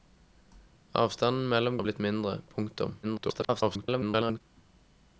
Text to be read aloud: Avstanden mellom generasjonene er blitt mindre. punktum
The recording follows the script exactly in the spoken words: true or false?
false